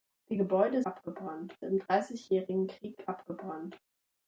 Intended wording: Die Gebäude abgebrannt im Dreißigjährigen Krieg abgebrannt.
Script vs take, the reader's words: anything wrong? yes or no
no